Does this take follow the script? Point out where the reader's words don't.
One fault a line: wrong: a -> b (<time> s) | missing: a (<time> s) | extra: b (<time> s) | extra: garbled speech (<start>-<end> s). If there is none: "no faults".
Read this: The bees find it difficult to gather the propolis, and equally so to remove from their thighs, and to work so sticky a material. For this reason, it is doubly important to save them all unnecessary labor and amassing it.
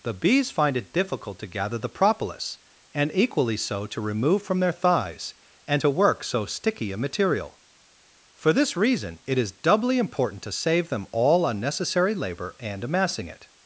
no faults